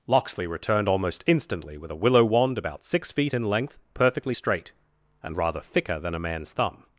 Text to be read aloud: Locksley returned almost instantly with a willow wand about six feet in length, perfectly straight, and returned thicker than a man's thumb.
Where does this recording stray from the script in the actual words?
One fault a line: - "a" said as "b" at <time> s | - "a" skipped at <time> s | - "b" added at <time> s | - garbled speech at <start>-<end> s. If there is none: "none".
- "returned" said as "rather" at 5.4 s